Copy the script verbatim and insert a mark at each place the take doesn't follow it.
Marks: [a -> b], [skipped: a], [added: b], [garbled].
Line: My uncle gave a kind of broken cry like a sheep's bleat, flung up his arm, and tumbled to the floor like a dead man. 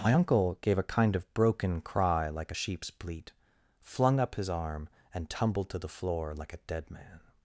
My uncle gave a kind of broken cry like a sheep's bleat, flung up his arm, and tumbled to the floor like a dead man.